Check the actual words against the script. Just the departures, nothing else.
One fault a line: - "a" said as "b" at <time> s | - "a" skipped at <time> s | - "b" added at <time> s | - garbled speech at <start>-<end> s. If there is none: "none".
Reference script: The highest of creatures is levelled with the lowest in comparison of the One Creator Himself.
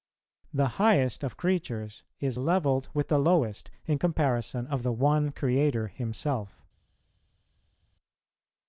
none